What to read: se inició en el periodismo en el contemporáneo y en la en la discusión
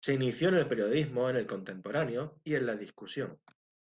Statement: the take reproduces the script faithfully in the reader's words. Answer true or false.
false